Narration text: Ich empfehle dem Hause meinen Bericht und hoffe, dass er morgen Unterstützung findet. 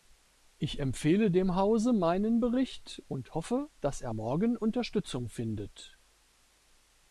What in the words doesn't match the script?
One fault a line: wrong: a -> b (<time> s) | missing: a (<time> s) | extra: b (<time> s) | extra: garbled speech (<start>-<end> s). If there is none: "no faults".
no faults